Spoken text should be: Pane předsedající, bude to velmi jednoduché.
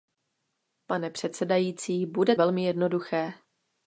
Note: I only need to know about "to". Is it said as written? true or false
false